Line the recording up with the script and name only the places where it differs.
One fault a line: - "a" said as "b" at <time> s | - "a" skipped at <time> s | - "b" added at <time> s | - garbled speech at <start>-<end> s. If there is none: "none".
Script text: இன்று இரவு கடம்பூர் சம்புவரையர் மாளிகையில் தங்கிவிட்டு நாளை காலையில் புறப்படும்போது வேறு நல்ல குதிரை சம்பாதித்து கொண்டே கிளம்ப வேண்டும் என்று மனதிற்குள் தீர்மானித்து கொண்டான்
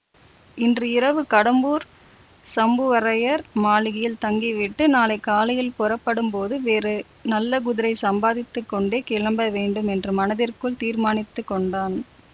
none